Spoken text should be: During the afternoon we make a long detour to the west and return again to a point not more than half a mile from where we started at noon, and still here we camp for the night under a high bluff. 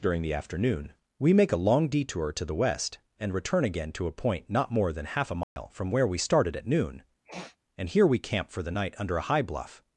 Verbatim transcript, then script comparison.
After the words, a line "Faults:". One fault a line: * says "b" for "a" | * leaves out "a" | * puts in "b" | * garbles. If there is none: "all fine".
During the afternoon we make a long detour to the west and return again to a point not more than half a mile from where we started at noon, and here we camp for the night under a high bluff.
Faults:
* leaves out "still"